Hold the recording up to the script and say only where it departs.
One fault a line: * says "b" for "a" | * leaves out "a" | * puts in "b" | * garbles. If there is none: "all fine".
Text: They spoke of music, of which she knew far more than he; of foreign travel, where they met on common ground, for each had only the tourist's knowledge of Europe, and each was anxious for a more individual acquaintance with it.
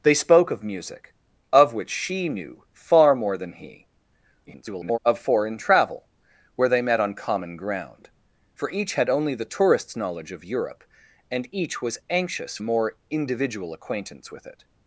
* garbles
* leaves out "for"